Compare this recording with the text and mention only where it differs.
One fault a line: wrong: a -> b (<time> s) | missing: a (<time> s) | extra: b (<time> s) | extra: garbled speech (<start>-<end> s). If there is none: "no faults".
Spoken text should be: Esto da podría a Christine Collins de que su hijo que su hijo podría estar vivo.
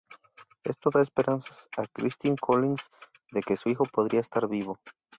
wrong: podría -> esperanzas (1.0 s)
missing: que su hijo (3.8 s)